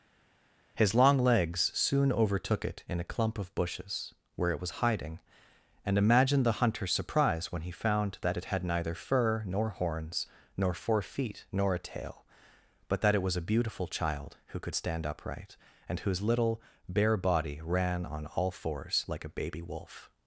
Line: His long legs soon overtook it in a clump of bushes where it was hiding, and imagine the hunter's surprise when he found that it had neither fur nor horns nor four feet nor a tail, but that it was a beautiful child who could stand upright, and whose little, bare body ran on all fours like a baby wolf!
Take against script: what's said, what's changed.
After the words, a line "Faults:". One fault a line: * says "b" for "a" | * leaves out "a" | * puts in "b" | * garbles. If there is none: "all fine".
His long legs soon overtook it in a clump of bushes where it was hiding, and imagine the hunter's surprise when he found that it had neither fur nor horns nor four feet nor a tail, but that it was a beautiful child who could stand upright, and whose little, bare body ran on all fours like a baby wolf!
Faults:
all fine